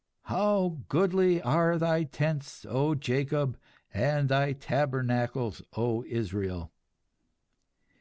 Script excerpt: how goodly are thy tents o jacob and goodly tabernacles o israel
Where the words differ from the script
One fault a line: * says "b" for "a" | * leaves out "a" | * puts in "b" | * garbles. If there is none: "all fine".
* says "thy" for "goodly"